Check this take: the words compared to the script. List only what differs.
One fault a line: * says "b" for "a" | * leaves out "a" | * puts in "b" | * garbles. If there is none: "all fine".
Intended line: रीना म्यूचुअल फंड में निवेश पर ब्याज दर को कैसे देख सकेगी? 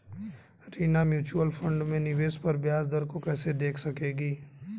all fine